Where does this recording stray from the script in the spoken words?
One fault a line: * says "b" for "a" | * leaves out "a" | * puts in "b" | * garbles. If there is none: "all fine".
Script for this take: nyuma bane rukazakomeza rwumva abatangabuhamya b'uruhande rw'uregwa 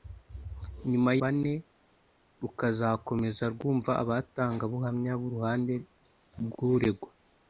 all fine